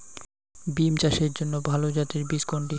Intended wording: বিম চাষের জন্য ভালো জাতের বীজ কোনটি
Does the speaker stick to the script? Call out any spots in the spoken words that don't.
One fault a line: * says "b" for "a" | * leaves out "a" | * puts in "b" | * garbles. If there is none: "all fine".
all fine